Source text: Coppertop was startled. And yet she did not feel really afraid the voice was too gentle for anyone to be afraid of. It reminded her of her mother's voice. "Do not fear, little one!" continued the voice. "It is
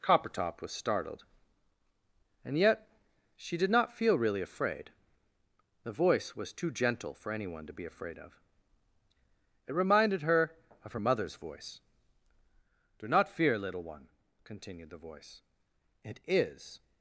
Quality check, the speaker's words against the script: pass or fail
pass